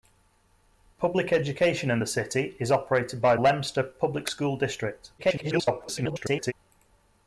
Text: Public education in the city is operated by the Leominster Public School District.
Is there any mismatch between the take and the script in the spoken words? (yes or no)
yes